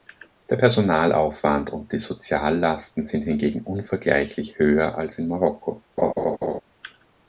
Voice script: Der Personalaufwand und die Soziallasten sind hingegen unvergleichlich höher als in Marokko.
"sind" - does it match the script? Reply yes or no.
yes